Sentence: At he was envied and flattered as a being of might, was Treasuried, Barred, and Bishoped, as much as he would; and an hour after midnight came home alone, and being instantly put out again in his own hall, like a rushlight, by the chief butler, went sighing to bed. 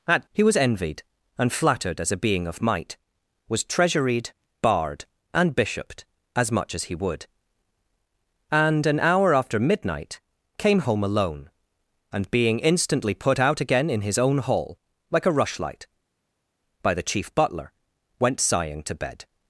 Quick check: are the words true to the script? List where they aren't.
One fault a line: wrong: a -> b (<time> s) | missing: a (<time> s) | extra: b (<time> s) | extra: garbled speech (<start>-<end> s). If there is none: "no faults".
no faults